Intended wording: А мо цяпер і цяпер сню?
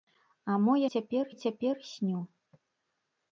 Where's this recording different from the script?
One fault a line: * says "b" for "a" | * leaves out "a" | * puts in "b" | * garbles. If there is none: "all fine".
all fine